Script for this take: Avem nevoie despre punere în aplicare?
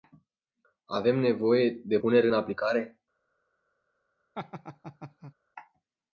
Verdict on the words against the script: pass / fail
fail